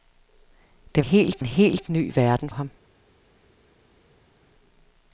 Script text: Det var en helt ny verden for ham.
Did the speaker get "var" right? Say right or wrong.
wrong